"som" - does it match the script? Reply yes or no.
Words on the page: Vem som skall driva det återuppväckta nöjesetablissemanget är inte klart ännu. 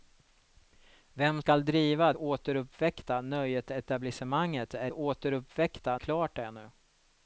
no